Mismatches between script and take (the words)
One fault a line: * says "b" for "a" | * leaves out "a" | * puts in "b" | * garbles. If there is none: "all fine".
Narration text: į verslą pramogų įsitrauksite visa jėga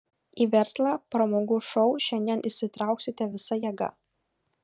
* puts in "šou šiandien"